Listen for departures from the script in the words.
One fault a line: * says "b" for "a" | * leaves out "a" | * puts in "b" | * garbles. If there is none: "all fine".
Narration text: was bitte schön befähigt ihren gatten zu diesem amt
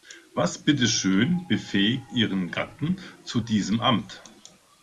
all fine